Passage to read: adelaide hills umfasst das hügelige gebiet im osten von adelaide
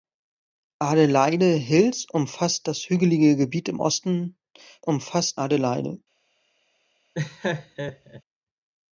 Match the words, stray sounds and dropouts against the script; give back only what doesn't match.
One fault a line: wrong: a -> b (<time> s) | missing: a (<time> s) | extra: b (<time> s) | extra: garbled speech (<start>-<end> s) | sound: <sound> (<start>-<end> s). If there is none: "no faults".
wrong: von -> umfasst (4.8 s)
sound: laugh (7.1-8.2 s)